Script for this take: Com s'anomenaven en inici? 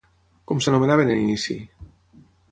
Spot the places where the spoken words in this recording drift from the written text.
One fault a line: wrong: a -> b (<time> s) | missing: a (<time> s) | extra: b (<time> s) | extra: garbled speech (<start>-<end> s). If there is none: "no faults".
no faults